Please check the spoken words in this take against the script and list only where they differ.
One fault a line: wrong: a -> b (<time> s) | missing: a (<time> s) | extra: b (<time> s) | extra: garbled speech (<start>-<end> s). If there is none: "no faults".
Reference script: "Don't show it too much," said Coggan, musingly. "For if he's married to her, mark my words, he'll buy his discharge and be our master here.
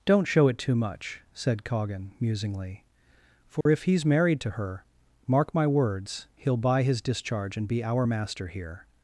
no faults